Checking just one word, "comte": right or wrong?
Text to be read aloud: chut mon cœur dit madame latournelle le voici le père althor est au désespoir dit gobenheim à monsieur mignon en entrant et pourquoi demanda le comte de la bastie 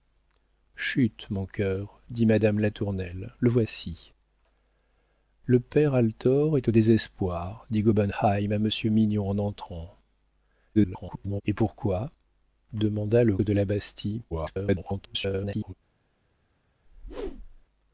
wrong